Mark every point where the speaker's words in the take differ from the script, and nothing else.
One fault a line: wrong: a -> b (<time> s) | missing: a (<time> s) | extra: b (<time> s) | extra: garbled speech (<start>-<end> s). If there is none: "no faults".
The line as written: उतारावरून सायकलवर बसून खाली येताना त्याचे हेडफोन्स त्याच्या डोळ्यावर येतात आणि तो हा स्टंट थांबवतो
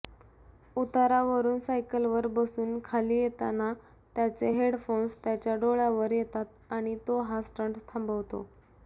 no faults